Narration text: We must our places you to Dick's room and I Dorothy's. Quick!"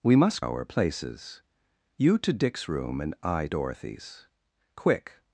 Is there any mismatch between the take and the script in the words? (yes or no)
no